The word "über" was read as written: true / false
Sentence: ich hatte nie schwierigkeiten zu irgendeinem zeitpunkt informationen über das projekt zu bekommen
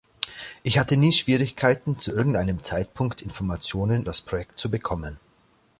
false